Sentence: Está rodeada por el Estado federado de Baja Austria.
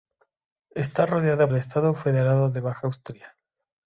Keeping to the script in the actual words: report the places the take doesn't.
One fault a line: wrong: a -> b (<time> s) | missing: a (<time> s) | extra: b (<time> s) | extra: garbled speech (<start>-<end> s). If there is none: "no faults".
missing: por (1.5 s)